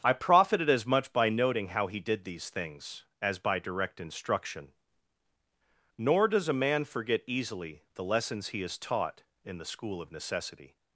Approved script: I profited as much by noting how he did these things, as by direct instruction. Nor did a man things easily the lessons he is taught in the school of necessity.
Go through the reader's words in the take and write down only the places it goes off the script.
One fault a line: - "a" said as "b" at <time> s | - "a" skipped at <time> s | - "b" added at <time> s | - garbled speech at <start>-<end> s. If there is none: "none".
- "did" said as "does" at 6.3 s
- "things" said as "forget" at 6.8 s